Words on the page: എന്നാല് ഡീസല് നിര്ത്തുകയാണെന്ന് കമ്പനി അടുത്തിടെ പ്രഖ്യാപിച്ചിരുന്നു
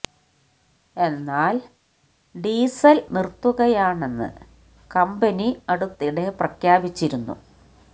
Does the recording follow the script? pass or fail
pass